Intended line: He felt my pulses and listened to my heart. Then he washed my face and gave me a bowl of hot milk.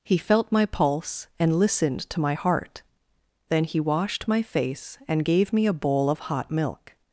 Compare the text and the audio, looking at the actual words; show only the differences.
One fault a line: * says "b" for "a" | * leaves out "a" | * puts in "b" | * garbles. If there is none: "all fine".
* says "pulse" for "pulses"